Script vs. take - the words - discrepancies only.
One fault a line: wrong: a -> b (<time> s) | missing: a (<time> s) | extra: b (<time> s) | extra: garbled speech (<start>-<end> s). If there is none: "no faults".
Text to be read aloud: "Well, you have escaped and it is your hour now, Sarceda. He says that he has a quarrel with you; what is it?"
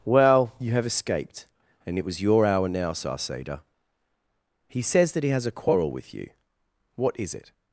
wrong: is -> was (2.0 s)